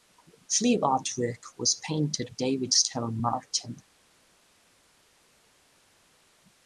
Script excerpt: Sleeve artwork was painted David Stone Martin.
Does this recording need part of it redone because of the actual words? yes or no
no